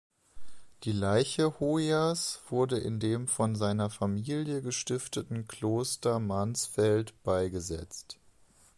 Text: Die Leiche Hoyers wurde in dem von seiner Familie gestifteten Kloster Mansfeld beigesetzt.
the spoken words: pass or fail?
pass